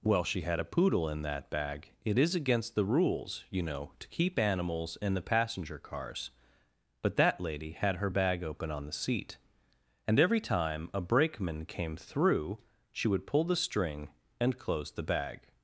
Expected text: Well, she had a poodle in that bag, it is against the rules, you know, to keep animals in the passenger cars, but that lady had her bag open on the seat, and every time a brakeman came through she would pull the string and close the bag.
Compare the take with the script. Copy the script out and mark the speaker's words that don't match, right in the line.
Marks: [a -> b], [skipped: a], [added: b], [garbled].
Well, she had a poodle in that bag, it is against the rules, you know, to keep animals in the passenger cars, but that lady had her bag open on the seat, and every time a brakeman came through she would pull the string and close the bag.